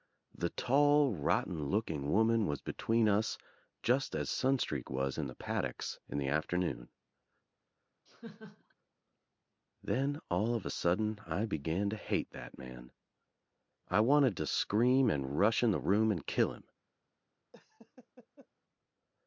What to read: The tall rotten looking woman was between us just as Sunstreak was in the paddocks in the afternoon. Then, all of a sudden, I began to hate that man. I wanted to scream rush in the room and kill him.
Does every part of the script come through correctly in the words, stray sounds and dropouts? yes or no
no